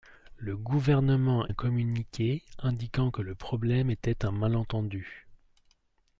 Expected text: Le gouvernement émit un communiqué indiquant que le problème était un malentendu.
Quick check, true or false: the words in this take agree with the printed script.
false